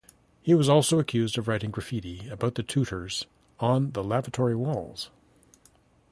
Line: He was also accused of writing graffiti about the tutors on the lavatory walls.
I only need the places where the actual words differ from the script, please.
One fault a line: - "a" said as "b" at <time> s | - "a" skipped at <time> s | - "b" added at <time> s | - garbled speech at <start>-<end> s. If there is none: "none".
none